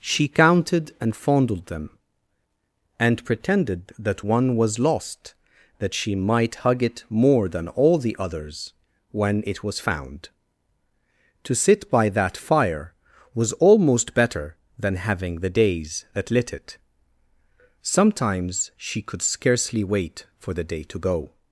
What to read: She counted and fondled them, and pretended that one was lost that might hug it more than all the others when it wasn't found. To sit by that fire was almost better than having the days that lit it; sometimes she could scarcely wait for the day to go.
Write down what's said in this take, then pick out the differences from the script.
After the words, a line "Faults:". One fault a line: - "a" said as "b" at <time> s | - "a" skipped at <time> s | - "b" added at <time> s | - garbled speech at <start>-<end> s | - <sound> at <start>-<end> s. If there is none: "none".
She counted and fondled them, and pretended that one was lost that she might hug it more than all the others when it was found. To sit by that fire was almost better than having the days that lit it; sometimes she could scarcely wait for the day to go.
Faults:
- "she" added at 5.9 s
- "wasn't" said as "was" at 9.6 s